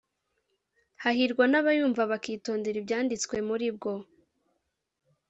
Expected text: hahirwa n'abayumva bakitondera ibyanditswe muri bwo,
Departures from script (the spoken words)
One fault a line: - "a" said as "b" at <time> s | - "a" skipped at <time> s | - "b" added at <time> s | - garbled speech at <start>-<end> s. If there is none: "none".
none